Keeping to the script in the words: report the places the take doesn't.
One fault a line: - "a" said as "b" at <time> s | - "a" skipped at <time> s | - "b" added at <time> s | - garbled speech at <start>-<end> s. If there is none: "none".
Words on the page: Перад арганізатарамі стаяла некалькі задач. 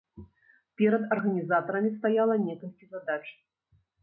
none